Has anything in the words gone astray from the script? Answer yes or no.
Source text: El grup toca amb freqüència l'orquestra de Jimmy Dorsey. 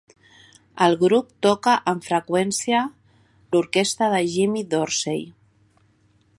no